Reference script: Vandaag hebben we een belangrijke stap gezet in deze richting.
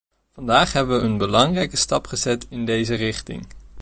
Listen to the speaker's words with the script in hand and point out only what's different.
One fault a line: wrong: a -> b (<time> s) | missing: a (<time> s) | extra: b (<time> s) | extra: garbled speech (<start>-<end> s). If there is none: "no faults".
no faults